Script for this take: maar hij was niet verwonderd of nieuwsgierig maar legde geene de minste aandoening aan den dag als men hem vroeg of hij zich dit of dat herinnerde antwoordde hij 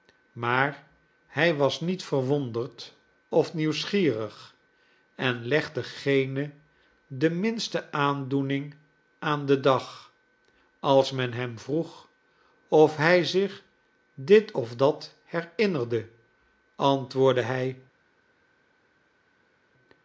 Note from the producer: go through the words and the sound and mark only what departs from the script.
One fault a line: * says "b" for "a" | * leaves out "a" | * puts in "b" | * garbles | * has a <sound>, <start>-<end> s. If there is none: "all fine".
* says "en" for "maar"